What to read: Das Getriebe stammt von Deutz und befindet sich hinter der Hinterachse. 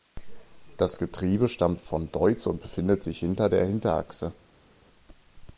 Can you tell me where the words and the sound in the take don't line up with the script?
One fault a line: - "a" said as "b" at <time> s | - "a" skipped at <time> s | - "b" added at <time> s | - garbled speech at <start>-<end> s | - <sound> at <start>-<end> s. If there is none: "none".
none